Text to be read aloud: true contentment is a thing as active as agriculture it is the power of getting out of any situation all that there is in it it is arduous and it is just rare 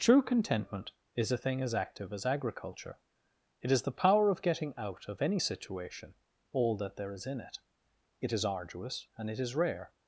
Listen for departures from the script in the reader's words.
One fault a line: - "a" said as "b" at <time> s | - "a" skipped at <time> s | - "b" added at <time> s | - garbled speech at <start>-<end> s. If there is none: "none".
- "just" skipped at 9.5 s